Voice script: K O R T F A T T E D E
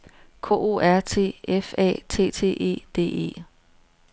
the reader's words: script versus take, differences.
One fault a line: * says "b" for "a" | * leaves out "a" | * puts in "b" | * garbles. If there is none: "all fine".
all fine